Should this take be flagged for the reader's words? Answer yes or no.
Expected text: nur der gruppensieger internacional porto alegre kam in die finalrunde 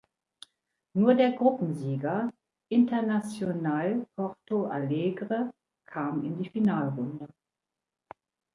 no